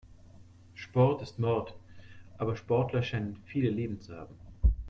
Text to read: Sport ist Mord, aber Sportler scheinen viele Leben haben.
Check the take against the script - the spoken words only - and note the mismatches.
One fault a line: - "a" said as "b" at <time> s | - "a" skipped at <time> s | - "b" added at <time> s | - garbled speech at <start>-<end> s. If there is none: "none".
- "zu" added at 4.0 s